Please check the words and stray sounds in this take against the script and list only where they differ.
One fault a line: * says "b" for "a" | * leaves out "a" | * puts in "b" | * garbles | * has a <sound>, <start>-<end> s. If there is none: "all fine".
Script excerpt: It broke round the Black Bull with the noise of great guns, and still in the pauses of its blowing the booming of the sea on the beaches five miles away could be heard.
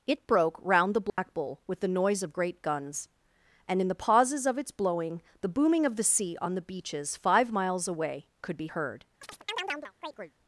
* has a dropout, 1.1-1.2 s
* leaves out "still"
* has a chirp, 9.2-10.3 s